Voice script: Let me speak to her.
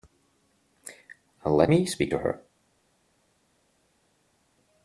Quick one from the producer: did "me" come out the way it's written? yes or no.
yes